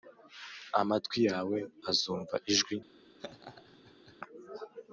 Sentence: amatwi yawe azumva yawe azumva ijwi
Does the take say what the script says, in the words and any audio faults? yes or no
no